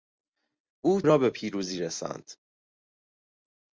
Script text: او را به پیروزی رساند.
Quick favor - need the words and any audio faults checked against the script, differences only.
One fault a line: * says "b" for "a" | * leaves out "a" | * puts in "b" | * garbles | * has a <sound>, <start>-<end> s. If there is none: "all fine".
all fine